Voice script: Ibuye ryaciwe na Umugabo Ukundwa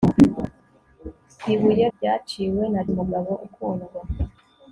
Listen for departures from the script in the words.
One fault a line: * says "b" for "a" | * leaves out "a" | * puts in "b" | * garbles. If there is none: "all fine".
all fine